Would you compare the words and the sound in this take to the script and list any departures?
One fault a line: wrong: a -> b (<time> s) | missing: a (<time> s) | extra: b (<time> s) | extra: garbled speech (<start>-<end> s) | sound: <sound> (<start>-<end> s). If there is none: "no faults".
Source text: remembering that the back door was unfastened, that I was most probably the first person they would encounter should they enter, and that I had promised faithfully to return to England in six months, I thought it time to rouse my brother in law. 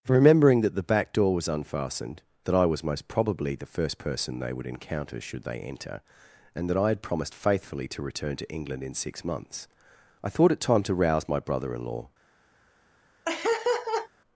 sound: laugh (13.3-14.1 s)